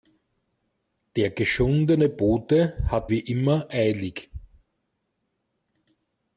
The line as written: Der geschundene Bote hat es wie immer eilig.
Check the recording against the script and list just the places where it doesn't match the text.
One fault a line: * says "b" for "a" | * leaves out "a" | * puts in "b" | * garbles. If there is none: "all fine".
* leaves out "es"